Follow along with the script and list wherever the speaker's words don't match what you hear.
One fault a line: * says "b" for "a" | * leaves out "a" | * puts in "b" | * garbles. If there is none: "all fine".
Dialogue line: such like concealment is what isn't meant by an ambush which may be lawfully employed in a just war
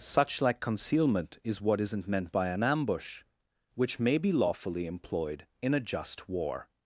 all fine